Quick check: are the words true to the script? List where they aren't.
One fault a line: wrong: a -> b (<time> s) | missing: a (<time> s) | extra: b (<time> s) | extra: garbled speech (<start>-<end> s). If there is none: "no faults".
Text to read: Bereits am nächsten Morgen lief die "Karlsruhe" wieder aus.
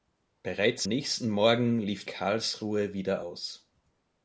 missing: am (0.9 s)
missing: die (2.1 s)